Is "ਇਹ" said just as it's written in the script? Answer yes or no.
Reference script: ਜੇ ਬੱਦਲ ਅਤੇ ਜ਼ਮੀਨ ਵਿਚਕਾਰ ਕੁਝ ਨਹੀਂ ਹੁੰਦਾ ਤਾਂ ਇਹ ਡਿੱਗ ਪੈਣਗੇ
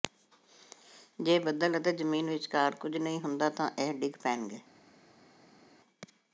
yes